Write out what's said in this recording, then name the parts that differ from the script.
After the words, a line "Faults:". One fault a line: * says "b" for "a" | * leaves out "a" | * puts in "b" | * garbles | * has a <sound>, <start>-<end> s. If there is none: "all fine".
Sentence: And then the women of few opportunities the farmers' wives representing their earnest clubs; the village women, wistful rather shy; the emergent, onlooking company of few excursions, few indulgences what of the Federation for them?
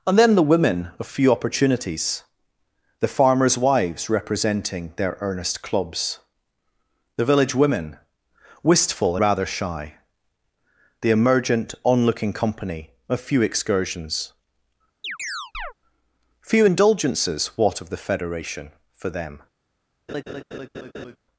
And then the women of few opportunities the farmers' wives representing their earnest clubs; the village women, wistful rather shy; the emergent, onlooking company of few excursions, few indulgences what of the Federation for them?
Faults:
* has a chirp, 15.0-15.7 s
* has a laugh, 20.1-21.2 s